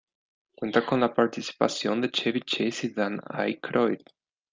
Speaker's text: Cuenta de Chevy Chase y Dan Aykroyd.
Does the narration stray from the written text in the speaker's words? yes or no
yes